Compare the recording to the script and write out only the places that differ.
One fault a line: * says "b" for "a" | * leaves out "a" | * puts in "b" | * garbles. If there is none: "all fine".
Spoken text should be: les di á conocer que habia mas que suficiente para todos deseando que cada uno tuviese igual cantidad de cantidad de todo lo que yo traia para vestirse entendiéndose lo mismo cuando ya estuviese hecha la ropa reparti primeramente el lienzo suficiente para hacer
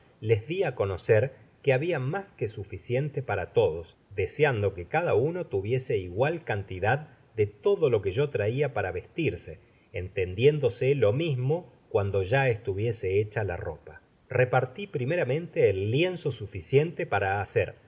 * leaves out "cantidad de"